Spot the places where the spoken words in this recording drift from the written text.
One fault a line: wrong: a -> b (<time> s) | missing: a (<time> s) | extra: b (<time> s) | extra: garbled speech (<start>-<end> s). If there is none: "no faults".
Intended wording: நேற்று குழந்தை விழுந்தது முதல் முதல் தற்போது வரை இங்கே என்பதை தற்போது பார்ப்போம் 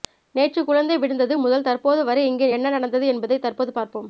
missing: முதல் (1.7 s)
extra: என்ன நடந்தது (2.5 s)